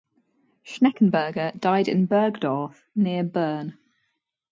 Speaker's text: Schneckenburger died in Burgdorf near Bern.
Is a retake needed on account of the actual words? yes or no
no